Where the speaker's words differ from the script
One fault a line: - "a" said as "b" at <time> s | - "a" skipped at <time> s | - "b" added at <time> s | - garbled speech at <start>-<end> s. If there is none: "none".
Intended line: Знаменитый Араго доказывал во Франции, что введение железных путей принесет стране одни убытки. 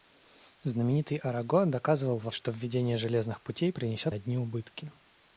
- "Франции" skipped at 2.3 s
- "стране" skipped at 4.1 s